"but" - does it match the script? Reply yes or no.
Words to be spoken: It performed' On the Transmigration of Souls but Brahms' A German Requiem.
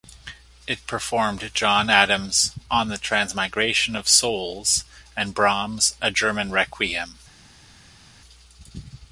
no